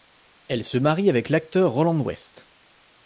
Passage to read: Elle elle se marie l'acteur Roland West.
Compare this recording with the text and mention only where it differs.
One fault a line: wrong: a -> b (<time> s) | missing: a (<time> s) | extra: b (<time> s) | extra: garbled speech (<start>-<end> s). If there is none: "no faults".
missing: elle (0.6 s)
extra: avec (1.1 s)